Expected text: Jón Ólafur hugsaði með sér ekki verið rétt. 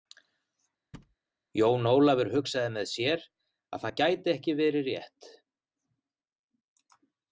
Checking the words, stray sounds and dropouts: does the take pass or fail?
fail